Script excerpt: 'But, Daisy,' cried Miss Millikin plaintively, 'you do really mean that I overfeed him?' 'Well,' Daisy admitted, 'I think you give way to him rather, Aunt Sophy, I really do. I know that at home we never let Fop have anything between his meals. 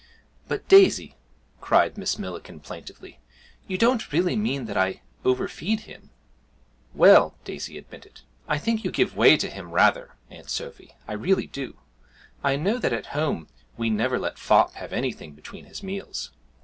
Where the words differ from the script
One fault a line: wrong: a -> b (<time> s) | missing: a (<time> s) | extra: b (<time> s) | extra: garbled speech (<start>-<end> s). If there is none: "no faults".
wrong: do -> don't (3.8 s)